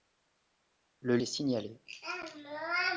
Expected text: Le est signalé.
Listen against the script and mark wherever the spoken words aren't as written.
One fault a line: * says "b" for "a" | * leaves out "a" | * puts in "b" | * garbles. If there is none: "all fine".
all fine